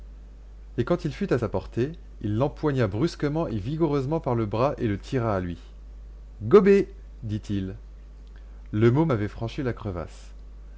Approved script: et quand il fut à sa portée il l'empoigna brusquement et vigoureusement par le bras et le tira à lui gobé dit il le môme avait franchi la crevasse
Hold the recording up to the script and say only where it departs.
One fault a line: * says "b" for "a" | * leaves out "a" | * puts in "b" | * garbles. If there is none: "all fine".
all fine